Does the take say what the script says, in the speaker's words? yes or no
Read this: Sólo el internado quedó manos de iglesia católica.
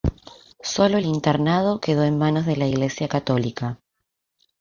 no